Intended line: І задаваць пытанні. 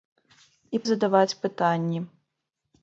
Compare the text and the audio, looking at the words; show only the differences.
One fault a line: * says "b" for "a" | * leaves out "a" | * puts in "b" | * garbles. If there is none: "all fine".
all fine